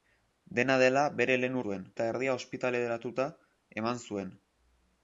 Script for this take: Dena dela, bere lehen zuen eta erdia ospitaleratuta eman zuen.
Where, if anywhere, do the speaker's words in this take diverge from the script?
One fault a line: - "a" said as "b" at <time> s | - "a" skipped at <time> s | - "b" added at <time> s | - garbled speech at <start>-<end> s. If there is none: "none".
none